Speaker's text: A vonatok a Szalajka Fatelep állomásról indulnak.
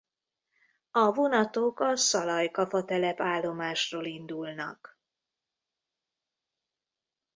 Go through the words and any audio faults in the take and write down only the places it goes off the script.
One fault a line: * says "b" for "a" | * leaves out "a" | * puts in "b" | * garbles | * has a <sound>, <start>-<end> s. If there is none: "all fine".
all fine